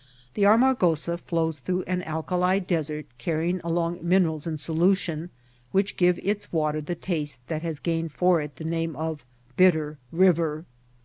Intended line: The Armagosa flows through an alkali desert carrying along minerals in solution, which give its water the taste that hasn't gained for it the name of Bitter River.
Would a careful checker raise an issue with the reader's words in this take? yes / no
yes